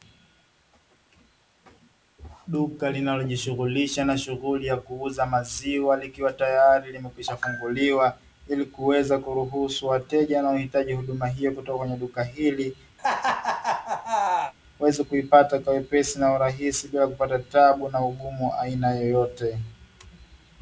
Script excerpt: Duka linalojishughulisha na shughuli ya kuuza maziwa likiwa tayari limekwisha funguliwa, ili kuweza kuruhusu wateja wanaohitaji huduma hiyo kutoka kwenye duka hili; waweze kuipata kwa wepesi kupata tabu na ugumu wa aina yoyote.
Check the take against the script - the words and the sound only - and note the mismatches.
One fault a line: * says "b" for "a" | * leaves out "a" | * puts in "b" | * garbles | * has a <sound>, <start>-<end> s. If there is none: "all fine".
* has a laugh, 13.0-14.5 s
* puts in "na urahisi bila"